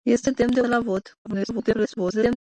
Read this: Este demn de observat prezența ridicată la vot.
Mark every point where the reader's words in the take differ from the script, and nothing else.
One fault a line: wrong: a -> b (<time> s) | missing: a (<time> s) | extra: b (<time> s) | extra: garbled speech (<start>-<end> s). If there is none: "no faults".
missing: observat prezența ridicată (0.6 s)
extra: garbled speech (1.2-2.4 s)